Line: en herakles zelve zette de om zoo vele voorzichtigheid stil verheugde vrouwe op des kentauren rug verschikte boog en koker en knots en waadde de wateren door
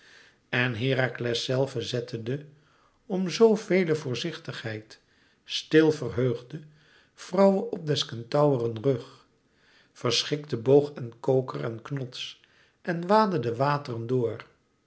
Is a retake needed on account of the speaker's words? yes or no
no